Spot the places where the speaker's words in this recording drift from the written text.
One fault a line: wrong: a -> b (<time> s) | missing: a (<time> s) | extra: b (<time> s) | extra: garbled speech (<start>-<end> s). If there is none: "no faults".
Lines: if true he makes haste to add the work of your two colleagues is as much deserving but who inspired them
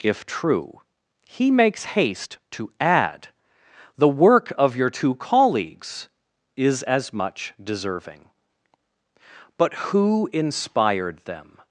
no faults